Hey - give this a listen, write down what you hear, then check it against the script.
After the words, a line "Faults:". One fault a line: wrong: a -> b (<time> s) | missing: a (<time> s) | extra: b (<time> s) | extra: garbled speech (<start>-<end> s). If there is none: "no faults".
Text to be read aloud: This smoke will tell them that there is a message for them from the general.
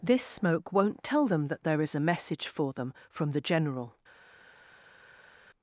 This smoke won't tell them that there is a message for them from the general.
Faults:
wrong: will -> won't (0.7 s)